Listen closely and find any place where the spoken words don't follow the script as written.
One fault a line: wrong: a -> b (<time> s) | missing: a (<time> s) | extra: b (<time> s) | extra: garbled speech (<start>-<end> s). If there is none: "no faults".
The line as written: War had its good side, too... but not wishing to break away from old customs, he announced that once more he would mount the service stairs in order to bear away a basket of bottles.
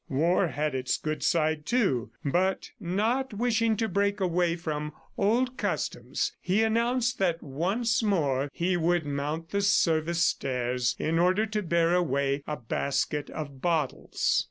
no faults